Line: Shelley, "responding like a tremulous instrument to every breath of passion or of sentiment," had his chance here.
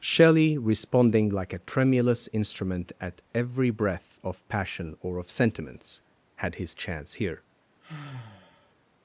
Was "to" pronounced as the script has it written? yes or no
no